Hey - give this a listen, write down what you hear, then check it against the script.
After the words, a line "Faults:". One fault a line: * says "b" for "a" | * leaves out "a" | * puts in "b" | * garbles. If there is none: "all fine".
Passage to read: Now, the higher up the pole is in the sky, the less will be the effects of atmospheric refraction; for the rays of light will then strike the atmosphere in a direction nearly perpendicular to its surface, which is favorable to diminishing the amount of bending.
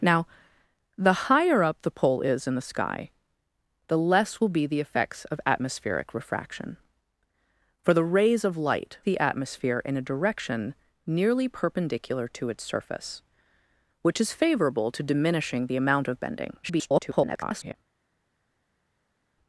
Now, the higher up the pole is in the sky, the less will be the effects of atmospheric refraction; for the rays of light the atmosphere in a direction nearly perpendicular to its surface, which is favorable to diminishing the amount of bending. [garbled]
Faults:
* leaves out "will then strike"
* garbles